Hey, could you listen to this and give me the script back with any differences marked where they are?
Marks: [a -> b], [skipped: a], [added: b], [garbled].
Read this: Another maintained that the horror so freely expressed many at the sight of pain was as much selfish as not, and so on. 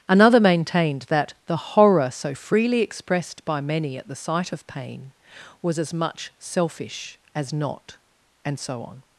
Another maintained that the horror so freely expressed [added: by] many at the sight of pain was as much selfish as not, and so on.